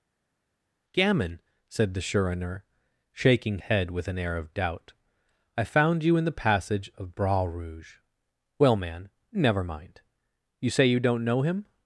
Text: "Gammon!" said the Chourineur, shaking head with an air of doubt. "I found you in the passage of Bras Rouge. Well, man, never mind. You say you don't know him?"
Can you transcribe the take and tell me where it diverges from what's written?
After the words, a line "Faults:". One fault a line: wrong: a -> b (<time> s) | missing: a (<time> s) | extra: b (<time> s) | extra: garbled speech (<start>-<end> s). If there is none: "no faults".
"Gammon!" said the Chourineur, shaking head with an air of doubt. "I found you in the passage of Bras Rouge. Well, man, never mind. You say you don't know him?"
Faults:
no faults